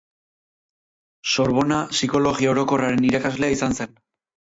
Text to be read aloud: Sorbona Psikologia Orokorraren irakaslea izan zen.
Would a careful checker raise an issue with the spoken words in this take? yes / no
no